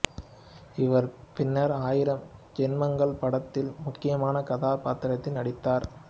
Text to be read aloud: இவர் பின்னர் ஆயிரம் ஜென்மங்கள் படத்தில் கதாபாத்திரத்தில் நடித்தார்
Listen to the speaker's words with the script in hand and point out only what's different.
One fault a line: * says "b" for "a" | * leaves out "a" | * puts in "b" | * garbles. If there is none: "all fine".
* puts in "முக்கியமான"